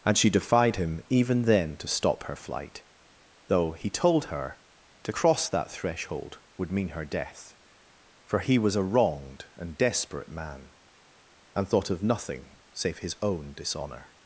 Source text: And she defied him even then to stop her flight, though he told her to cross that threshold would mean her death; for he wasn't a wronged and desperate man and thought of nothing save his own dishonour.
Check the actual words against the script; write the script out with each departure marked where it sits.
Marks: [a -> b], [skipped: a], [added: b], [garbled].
And she defied him even then to stop her flight, though he told her to cross that threshold would mean her death; for he [wasn't -> was] a wronged and desperate man and thought of nothing save his own dishonour.